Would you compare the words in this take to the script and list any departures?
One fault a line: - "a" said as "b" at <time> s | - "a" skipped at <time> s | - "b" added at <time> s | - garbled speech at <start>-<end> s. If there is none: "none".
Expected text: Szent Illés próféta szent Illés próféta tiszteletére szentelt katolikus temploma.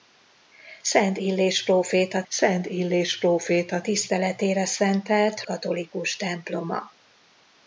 none